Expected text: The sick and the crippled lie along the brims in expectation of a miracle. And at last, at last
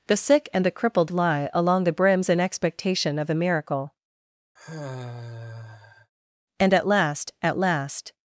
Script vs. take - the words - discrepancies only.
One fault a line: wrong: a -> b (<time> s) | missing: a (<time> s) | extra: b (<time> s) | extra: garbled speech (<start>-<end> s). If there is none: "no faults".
no faults